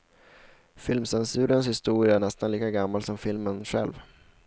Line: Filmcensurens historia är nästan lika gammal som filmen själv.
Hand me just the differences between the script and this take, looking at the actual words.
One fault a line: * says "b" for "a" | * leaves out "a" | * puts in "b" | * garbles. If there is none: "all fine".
all fine